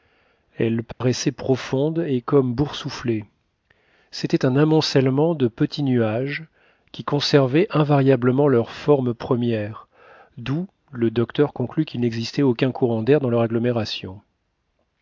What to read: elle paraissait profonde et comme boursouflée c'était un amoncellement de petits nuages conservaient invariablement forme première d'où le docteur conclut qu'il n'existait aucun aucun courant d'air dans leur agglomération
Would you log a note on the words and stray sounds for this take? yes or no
yes